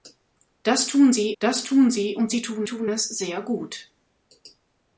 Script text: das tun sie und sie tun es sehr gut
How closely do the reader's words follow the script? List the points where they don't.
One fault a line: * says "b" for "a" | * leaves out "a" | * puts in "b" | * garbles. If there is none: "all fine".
* puts in "das tun sie"
* puts in "tun"